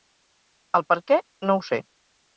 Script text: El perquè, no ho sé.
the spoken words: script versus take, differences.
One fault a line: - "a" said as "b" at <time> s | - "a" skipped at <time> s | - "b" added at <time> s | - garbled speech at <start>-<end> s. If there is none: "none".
none